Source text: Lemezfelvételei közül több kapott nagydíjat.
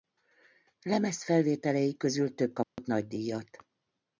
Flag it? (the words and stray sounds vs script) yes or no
yes